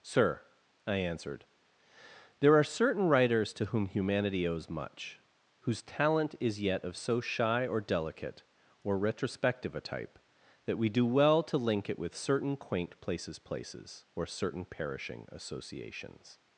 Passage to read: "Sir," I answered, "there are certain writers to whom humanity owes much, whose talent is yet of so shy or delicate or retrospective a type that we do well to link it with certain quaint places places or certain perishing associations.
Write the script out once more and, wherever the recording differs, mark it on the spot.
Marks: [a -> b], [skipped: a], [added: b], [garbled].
"Sir," I answered, "there are certain writers to whom humanity owes much, whose talent is yet of so shy or delicate or retrospective a type that we do well to link it with certain quaint places places or certain perishing associations.